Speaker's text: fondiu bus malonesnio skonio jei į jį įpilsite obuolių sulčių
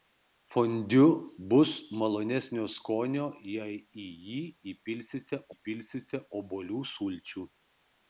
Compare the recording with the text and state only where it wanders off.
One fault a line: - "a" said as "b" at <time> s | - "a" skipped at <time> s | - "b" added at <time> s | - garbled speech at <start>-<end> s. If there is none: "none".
- "įpilsite" added at 5.5 s